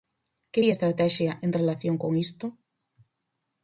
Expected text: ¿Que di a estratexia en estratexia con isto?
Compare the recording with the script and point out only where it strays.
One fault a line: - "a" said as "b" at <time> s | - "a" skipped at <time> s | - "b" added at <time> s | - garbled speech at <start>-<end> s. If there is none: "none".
- "estratexia" said as "relación" at 1.6 s